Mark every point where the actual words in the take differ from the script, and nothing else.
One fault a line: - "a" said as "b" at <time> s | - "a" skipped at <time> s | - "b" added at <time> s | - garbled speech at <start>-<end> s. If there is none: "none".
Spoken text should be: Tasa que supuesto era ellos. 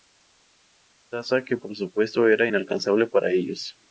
- "por" added at 1.5 s
- "inalcanzable para" added at 2.4 s